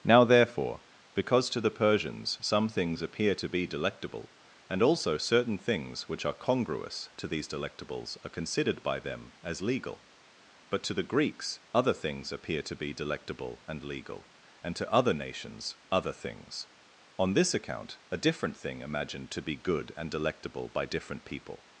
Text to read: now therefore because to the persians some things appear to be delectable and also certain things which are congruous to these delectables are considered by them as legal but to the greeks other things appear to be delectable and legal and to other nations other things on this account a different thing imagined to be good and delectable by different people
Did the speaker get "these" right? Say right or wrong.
right